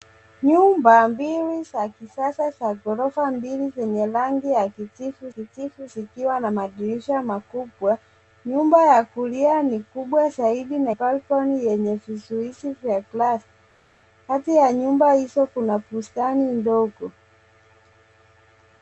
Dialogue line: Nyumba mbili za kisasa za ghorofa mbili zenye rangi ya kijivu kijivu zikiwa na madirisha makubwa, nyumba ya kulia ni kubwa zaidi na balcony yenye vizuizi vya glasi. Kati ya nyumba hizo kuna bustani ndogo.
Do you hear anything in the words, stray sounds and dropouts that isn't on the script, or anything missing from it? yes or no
no